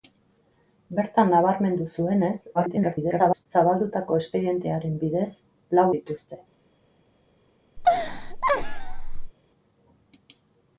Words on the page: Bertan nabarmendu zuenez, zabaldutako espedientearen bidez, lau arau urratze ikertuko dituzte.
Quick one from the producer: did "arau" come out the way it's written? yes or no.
no